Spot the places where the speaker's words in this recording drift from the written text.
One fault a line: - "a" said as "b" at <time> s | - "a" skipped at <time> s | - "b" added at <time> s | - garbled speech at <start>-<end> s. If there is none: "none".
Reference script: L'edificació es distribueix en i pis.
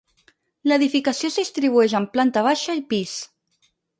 - "planta baixa" added at 2.1 s